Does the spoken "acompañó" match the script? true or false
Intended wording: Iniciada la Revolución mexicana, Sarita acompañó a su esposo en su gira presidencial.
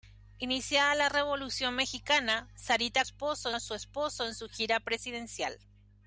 false